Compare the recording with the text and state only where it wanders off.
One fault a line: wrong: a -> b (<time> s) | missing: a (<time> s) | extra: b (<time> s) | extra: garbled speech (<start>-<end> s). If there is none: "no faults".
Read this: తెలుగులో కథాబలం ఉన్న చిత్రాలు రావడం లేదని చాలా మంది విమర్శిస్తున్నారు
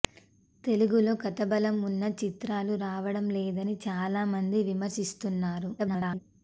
extra: garbled speech (5.8-6.2 s)